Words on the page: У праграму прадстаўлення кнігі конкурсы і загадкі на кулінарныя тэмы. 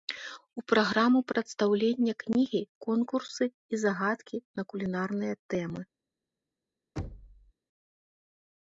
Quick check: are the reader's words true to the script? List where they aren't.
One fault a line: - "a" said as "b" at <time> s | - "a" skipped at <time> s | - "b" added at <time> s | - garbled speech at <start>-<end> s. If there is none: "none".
none